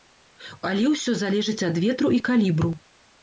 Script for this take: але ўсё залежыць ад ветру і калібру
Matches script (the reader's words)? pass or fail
pass